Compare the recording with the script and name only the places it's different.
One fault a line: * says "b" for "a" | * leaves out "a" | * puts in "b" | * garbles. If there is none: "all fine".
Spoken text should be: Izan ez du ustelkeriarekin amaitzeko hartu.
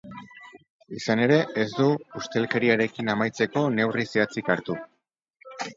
* puts in "ere"
* puts in "neurri zehatzik"